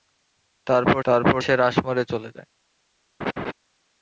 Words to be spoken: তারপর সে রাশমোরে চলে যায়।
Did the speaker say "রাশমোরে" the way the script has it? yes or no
yes